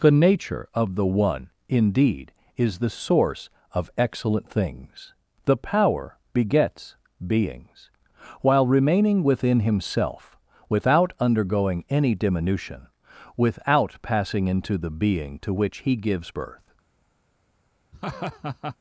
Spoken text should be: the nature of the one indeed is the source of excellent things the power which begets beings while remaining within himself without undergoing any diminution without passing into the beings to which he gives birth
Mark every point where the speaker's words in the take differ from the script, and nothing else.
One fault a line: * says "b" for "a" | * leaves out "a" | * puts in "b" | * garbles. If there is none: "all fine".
* leaves out "which"
* says "being" for "beings"